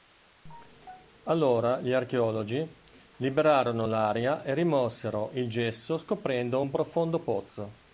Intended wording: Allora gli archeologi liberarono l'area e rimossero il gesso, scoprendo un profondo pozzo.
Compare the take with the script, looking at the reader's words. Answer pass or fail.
pass